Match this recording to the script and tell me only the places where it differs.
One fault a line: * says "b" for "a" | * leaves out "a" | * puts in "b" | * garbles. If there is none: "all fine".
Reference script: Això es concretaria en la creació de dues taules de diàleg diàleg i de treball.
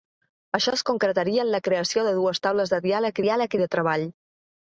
all fine